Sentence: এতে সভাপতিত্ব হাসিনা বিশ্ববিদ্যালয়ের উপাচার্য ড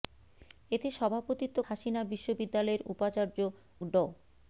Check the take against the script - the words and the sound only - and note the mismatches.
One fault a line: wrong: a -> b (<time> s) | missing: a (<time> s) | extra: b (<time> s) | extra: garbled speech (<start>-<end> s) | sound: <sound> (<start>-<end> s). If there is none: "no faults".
no faults